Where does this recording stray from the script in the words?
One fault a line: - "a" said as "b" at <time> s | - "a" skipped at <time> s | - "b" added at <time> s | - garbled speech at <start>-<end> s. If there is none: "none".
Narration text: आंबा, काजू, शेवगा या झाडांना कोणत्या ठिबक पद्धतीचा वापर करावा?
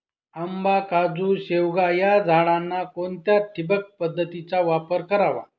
none